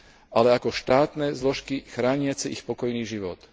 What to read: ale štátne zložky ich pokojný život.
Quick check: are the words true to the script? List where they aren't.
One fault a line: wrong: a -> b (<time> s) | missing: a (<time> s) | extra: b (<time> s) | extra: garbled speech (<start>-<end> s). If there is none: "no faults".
extra: ako (0.5 s)
extra: chrániace (1.9 s)